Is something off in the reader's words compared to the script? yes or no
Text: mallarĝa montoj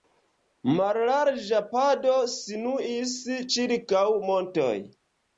yes